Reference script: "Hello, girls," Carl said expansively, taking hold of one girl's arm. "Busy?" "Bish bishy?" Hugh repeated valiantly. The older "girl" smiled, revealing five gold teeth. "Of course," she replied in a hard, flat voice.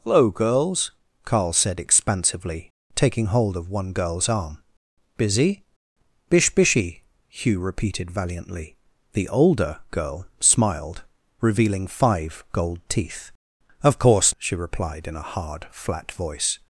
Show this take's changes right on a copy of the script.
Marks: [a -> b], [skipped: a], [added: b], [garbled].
"Hello, girls," Carl said expansively, taking hold of one girl's arm. "Busy?" "Bish bishy?" Hugh repeated valiantly. The older "girl" smiled, revealing five gold teeth. "Of course," she replied in a hard, flat voice.